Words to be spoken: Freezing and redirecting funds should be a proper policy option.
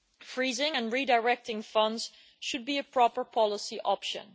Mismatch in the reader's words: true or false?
false